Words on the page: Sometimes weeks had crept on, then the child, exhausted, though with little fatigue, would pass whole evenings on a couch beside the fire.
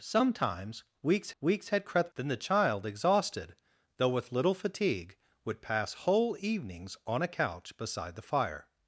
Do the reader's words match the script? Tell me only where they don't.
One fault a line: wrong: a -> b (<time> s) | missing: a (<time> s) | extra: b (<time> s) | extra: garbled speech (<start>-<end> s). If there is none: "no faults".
extra: weeks (1.4 s)
missing: on (2.1 s)